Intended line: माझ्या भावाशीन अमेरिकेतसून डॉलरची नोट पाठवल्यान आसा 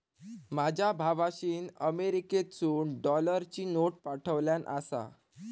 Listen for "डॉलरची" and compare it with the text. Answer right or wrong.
right